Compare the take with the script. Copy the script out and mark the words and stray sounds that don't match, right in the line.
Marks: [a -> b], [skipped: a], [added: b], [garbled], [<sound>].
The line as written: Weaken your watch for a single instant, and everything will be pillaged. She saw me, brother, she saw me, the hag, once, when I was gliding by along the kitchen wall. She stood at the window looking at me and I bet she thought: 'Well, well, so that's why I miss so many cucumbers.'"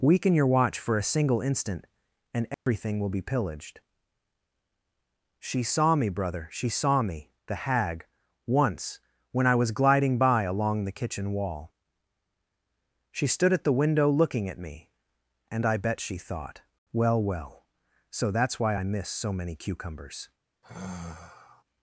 Weaken your watch for a single instant, and everything [dropout] will be pillaged. She saw me, brother, she saw me, the hag, once, when I was gliding by along the kitchen wall. She stood at the window looking at me and I bet she thought: 'Well, well, so that's why I miss so many cucumbers.'" [sigh]